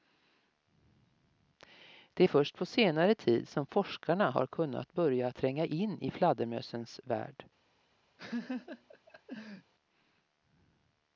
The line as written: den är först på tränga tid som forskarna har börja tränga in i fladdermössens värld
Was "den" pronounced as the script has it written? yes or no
no